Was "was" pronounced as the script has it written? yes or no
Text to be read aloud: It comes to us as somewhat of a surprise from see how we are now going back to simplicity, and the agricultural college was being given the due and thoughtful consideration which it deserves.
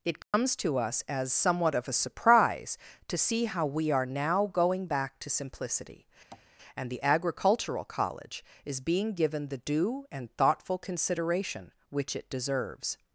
no